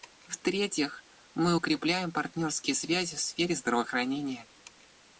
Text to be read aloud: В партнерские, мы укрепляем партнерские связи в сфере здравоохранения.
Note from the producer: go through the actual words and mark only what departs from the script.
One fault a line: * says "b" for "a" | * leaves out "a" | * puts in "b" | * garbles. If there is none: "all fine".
* says "третьих" for "партнерские"